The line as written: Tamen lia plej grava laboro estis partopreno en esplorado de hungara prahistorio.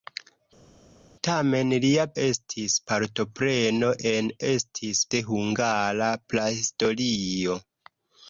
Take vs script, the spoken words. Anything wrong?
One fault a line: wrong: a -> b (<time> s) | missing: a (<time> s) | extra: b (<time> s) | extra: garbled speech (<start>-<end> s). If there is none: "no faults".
missing: plej grava laboro (2.1 s)
wrong: esplorado -> estis (4.5 s)